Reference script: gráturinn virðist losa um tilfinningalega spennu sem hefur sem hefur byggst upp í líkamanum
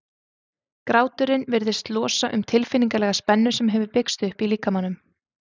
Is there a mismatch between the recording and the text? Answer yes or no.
yes